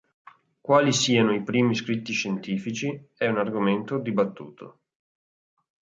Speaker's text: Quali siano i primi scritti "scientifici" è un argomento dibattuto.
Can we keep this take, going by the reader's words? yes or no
yes